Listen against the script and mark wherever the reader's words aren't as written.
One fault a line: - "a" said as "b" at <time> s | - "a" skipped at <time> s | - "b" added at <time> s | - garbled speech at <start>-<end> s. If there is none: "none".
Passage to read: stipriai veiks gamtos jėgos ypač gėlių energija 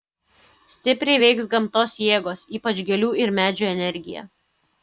- "ir medžių" added at 3.2 s